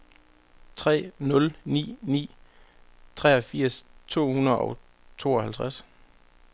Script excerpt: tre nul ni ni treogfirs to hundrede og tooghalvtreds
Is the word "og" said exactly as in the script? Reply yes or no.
yes